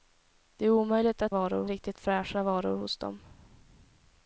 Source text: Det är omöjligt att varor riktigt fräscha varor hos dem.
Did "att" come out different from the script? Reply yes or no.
no